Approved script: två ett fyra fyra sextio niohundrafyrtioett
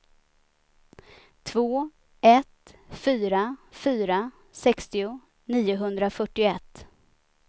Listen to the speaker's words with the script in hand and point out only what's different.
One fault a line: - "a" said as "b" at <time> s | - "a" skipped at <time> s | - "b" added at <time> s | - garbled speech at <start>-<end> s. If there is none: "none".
none